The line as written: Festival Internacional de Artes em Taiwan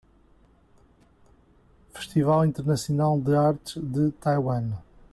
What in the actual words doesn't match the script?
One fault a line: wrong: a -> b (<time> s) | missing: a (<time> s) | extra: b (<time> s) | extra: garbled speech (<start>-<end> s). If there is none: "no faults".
wrong: em -> de (3.8 s)